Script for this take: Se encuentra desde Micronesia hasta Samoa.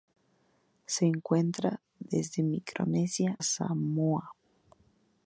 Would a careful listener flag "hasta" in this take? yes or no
yes